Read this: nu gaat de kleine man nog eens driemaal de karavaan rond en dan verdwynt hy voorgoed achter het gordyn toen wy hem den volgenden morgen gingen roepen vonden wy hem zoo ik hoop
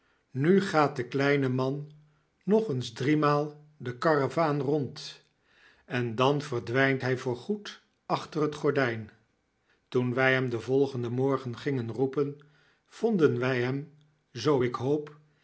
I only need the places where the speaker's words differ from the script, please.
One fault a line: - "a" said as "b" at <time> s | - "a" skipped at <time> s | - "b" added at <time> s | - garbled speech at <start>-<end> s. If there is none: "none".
none